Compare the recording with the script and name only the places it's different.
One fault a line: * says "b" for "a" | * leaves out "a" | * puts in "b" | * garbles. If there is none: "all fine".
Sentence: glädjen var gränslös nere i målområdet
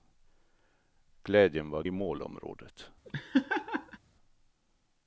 * leaves out "gränslös nere"